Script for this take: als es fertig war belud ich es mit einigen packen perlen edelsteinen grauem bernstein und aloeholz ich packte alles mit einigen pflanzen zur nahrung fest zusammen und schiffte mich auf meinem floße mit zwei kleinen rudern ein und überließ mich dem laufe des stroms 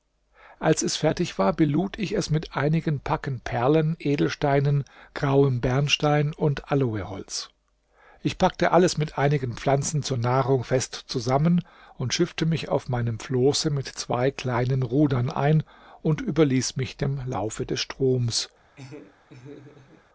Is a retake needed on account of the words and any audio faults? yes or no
yes